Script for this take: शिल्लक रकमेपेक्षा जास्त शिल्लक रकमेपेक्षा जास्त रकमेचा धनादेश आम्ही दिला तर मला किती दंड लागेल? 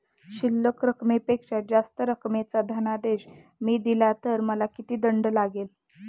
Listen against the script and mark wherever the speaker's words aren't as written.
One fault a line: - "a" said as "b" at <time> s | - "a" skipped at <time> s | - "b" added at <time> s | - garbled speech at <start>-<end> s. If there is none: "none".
- "शिल्लक रकमेपेक्षा जास्त" skipped at 2.0 s
- "आम्ही" said as "मी" at 3.6 s